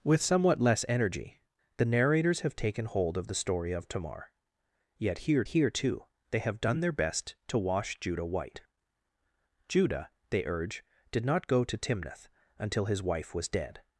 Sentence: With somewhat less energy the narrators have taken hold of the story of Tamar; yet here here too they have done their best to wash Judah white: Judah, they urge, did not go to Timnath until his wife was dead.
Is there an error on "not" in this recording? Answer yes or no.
no